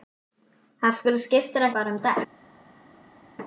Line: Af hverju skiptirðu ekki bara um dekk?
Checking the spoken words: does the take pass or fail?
fail